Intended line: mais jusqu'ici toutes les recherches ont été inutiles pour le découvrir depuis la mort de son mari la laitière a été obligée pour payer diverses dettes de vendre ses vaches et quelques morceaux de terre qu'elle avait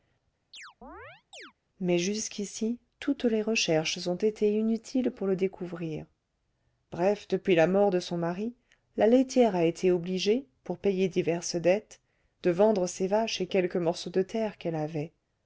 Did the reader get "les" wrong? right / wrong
right